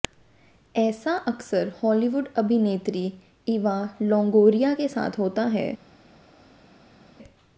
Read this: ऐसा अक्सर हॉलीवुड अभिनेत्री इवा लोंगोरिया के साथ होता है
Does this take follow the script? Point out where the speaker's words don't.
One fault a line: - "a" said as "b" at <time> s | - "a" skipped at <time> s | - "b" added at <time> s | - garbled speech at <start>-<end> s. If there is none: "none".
none